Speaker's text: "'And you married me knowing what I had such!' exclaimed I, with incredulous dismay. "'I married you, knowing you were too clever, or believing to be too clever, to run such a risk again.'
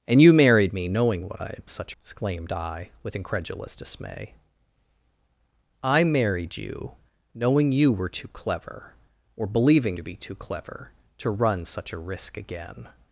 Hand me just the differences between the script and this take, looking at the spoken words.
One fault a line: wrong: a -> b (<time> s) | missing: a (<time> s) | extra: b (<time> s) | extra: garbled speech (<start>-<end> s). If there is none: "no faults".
no faults